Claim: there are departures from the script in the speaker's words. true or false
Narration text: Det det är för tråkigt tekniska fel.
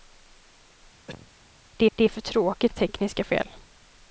false